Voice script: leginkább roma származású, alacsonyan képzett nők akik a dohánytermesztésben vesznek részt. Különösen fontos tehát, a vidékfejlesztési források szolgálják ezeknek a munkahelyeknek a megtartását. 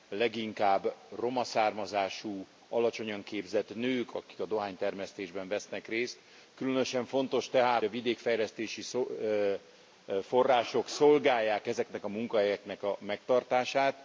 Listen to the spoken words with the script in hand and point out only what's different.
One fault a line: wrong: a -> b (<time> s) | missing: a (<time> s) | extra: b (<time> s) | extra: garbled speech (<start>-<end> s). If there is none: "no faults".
no faults